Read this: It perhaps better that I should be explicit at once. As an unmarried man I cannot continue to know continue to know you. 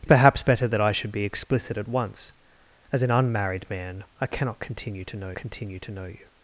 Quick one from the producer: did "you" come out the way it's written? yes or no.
yes